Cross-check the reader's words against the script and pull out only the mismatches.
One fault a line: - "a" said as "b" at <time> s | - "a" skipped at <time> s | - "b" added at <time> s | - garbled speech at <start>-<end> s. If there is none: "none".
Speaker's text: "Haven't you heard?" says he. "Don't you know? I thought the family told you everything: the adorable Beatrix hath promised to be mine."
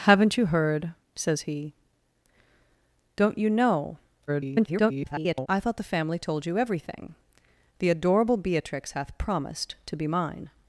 - garbled speech at 4.3-5.5 s